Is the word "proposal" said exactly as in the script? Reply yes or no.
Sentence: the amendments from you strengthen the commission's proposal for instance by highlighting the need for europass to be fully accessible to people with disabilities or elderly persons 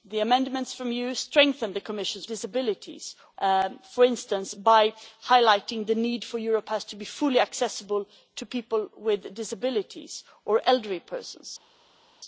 no